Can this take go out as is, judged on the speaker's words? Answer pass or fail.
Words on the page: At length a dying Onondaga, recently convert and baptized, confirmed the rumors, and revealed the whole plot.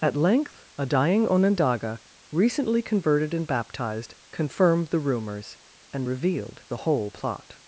fail